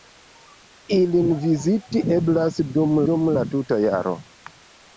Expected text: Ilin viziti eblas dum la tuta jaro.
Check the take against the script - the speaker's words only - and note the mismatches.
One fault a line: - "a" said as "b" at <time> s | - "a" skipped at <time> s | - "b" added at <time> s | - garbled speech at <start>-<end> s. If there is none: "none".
- "dum" added at 3.1 s